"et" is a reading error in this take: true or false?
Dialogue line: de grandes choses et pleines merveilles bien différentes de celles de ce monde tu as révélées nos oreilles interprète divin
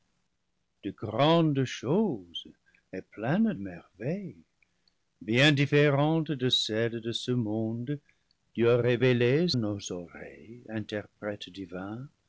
false